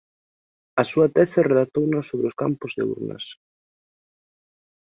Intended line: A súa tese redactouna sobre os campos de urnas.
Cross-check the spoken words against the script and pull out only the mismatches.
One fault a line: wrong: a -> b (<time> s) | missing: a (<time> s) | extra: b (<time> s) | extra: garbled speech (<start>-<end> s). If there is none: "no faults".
no faults